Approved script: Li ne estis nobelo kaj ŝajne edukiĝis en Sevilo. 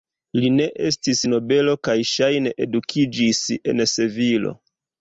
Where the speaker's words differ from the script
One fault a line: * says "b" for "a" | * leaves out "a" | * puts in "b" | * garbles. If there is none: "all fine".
all fine